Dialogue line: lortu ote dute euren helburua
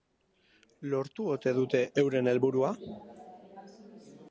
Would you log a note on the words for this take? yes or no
no